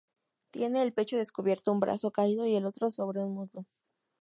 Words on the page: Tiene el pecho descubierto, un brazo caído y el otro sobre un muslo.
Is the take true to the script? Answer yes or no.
yes